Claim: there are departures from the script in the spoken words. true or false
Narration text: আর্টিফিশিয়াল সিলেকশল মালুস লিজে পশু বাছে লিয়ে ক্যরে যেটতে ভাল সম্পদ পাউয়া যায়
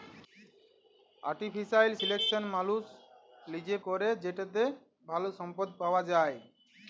true